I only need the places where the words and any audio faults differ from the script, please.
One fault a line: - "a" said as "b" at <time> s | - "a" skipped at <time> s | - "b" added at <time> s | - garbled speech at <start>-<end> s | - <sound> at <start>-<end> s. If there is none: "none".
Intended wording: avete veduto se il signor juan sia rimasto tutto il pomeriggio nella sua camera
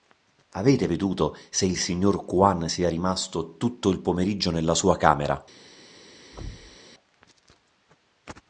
- thud at 6.3-6.8 s